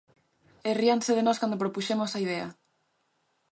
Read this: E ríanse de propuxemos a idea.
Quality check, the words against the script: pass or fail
fail